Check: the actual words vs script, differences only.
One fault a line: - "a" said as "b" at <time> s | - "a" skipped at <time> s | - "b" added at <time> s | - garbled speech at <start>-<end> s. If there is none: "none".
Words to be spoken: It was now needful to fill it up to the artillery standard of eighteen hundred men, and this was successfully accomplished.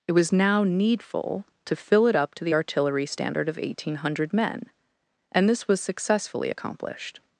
none